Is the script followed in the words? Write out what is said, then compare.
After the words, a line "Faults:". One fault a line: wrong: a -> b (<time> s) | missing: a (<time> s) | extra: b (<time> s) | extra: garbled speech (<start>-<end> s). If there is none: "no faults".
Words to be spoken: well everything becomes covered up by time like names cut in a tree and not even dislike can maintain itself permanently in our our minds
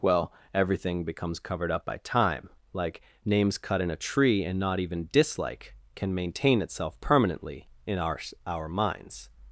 well everything becomes covered up by time like names cut in a tree and not even dislike can maintain itself permanently in our our minds
Faults:
no faults